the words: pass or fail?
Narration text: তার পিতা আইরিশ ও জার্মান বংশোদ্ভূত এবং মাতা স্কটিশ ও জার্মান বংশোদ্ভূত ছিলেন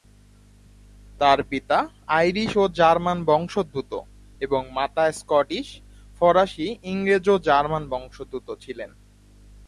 fail